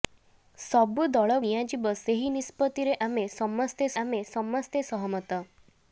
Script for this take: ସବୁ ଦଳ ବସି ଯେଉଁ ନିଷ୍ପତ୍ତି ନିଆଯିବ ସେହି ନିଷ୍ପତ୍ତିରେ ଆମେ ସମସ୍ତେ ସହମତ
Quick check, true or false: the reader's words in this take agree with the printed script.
false